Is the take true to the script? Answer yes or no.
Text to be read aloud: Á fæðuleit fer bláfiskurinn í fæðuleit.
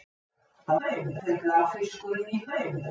yes